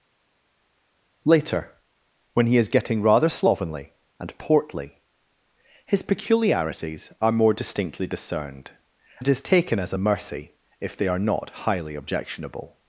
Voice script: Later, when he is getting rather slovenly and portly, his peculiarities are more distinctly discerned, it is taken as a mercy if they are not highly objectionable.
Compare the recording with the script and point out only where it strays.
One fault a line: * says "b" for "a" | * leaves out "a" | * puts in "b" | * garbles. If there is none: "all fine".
all fine